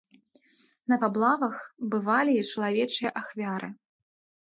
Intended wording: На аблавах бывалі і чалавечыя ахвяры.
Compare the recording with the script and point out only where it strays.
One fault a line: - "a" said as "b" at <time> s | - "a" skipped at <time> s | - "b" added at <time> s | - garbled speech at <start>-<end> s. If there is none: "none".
none